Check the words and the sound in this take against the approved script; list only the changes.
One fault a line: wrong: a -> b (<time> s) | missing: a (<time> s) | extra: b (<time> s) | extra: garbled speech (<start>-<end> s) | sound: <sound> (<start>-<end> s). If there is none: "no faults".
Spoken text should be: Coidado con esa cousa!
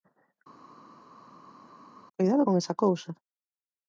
no faults